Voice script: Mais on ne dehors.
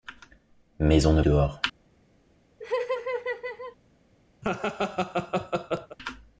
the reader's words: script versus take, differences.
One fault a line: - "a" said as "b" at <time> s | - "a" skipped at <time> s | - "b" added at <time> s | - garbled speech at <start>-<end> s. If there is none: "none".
none